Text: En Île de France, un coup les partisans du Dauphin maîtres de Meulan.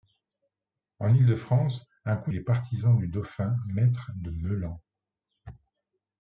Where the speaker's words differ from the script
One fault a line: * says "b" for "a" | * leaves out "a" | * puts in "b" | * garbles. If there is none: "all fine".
all fine